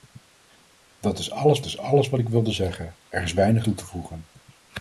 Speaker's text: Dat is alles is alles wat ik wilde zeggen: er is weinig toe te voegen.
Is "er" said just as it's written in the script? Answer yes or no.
yes